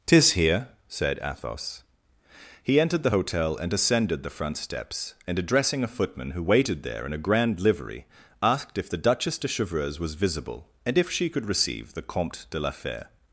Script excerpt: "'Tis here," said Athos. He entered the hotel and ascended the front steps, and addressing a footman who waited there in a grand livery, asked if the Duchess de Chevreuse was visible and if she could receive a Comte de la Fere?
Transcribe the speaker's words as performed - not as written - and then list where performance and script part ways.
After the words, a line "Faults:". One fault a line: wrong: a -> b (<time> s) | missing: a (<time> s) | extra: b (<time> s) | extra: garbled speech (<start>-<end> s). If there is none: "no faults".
"'Tis here," said Athos. He entered the hotel and ascended the front steps, and addressing a footman who waited there in a grand livery, asked if the Duchess de Chevreuse was visible and if she could receive the Comte de la Fere?
Faults:
wrong: a -> the (11.9 s)